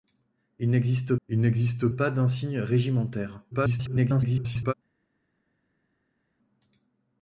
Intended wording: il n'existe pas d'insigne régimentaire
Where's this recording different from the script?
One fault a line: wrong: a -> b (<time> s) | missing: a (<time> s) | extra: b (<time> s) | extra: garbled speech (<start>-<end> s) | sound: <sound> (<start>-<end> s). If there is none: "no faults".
extra: il n'existe (1.3 s)
extra: garbled speech (3.5-4.7 s)